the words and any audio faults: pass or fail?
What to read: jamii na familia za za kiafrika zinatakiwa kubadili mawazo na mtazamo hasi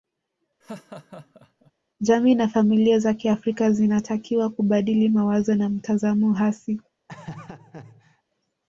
fail